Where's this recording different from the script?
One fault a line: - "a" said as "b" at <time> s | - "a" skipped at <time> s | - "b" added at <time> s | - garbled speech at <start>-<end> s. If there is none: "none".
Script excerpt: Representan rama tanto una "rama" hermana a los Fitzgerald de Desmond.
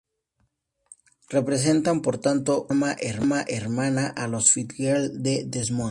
- "rama" said as "por" at 2.0 s